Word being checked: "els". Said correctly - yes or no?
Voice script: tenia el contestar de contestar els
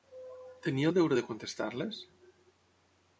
no